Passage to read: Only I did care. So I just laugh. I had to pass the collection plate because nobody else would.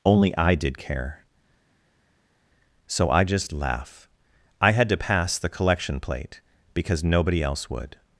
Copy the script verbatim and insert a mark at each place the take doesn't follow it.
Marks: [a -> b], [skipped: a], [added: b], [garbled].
Only I did care. So I just laugh. I had to pass the collection plate because nobody else would.